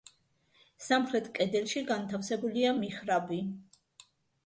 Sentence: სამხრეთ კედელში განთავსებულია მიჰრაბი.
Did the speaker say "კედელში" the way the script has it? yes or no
yes